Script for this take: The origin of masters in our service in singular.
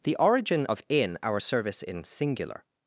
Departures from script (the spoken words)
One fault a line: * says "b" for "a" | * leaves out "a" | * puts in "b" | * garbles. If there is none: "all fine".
* leaves out "masters"